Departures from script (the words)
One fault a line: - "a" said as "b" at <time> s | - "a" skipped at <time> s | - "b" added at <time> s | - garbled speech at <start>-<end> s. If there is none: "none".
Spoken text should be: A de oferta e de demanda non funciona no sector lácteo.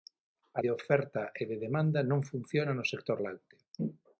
none